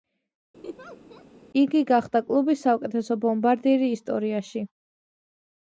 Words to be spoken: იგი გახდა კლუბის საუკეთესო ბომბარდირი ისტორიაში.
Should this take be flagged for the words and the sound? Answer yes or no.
yes